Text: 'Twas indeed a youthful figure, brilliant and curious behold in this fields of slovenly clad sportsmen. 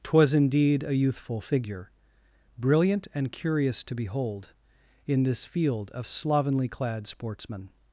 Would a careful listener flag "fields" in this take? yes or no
yes